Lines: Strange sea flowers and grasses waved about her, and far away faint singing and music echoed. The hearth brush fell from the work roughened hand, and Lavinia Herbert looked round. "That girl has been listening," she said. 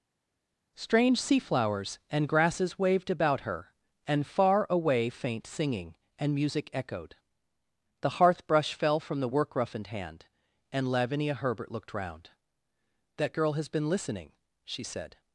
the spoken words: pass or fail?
pass